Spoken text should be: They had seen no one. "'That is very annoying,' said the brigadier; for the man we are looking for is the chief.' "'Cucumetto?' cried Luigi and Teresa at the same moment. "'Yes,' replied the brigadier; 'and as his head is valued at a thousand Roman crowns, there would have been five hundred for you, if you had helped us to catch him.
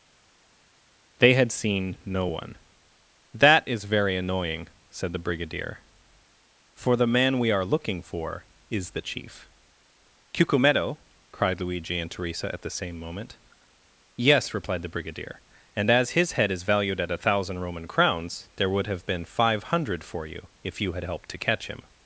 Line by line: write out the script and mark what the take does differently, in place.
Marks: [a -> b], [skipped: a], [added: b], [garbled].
They had seen no one. "'That is very annoying,' said the brigadier; for the man we are looking for is the chief.' "'Cucumetto?' cried Luigi and Teresa at the same moment. "'Yes,' replied the brigadier; 'and as his head is valued at a thousand Roman crowns, there would have been five hundred for you, if you had helped [skipped: us] to catch him.